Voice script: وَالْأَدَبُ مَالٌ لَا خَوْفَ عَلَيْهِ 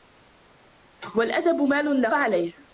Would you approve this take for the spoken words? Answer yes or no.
no